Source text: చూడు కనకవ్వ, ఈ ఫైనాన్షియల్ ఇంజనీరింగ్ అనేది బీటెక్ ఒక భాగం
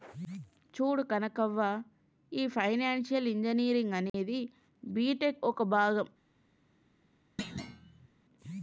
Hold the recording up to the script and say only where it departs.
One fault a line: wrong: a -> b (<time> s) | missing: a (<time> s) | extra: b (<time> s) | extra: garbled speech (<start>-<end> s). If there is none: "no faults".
no faults